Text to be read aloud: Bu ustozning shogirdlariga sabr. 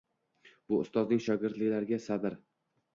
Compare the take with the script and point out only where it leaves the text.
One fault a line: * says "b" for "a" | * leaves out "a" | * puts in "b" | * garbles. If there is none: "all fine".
all fine